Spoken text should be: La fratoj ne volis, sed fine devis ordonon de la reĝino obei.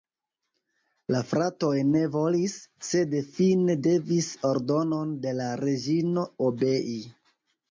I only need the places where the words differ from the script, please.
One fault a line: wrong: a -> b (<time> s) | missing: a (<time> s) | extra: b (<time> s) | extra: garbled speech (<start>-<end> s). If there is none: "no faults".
no faults